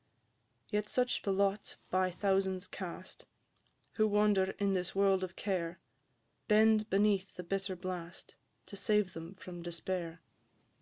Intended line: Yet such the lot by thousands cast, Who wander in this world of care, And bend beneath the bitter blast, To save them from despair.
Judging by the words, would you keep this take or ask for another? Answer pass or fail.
fail